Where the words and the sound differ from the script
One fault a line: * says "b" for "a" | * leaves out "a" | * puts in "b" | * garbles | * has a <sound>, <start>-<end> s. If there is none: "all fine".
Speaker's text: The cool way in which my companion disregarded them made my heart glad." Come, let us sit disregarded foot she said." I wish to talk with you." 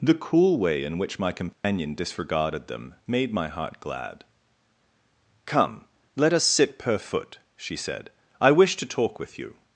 * has a dropout, 1.5-1.6 s
* says "per" for "disregarded"